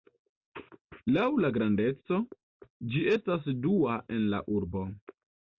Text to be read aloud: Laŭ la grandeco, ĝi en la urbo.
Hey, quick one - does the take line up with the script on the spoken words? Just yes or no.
no